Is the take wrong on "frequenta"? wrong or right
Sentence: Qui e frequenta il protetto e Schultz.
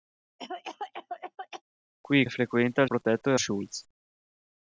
right